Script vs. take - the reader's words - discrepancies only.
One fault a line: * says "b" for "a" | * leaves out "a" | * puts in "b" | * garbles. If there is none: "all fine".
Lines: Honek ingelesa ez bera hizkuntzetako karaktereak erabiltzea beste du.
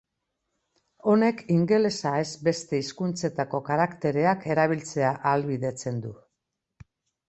* says "beste" for "bera"
* says "ahalbidetzen" for "beste"